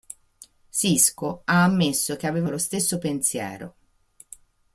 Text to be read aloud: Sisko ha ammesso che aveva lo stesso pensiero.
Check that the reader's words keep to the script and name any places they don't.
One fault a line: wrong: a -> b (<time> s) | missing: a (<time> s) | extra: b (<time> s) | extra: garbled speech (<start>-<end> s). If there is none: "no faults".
no faults